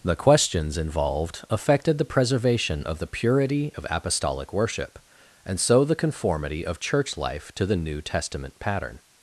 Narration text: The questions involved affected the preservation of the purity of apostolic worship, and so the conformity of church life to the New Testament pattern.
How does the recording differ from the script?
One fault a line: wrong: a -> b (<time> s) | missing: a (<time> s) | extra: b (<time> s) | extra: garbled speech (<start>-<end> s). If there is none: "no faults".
no faults